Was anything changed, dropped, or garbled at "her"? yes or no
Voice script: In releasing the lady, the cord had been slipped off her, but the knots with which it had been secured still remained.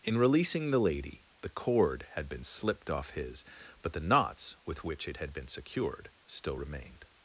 yes